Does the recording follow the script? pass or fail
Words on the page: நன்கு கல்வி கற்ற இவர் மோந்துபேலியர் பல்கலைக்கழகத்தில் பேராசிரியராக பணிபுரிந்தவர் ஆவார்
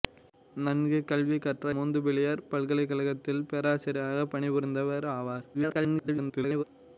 fail